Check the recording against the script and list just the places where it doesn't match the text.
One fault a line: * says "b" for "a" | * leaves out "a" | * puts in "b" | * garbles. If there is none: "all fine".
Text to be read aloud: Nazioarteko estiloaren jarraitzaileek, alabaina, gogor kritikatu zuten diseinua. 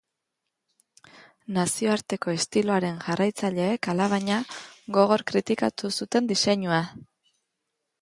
all fine